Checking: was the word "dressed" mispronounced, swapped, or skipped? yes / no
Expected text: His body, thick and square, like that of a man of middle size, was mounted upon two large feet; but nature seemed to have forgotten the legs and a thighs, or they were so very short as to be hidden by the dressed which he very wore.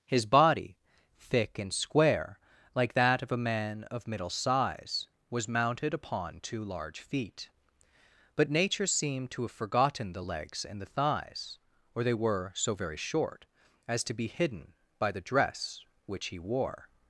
yes